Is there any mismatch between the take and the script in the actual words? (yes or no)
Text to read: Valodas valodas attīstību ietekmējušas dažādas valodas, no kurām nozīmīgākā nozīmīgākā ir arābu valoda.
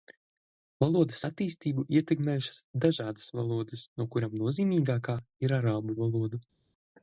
yes